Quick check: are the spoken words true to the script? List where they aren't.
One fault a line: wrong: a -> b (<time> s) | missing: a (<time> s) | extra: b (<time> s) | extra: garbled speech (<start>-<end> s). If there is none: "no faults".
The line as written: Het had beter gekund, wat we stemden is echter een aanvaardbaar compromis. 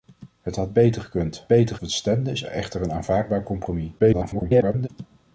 wrong: wat -> beter (1.5 s)
extra: garbled speech (4.0-4.9 s)